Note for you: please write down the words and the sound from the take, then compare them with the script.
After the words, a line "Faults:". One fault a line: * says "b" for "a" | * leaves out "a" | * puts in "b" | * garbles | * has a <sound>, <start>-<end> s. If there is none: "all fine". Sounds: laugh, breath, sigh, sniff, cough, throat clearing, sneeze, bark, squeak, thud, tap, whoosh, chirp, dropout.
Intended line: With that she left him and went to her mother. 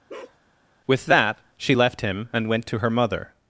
With that she left him and went to her mother.
Faults:
* has a bark, 0.1-0.4 s